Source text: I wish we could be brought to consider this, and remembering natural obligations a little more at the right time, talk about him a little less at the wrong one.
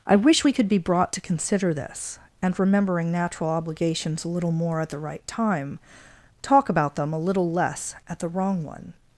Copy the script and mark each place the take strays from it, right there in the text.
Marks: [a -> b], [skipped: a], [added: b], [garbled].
I wish we could be brought to consider this, and remembering natural obligations a little more at the right time, talk about [him -> them] a little less at the wrong one.